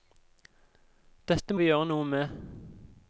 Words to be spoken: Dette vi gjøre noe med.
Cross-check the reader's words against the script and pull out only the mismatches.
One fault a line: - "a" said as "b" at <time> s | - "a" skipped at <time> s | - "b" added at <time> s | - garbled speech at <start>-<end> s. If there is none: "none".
none